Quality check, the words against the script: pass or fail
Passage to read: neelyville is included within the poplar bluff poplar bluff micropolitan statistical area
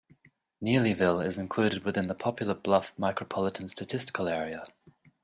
fail